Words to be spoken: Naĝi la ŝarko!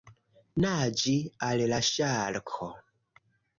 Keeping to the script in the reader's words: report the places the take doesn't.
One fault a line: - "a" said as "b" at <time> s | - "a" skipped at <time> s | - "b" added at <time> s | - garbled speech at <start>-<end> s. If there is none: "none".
- "al" added at 1.5 s